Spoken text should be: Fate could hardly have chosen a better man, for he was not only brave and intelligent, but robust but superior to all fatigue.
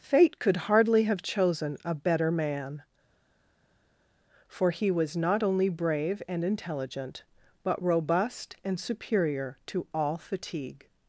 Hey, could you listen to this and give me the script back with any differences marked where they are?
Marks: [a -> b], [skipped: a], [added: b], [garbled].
Fate could hardly have chosen a better man, for he was not only brave and intelligent, but robust [but -> and] superior to all fatigue.